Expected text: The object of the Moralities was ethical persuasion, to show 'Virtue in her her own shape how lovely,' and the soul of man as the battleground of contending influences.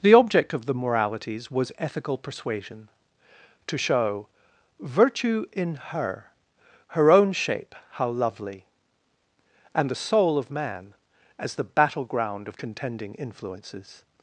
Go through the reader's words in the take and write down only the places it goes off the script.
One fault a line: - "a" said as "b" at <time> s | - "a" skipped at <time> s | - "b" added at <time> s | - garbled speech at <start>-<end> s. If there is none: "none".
none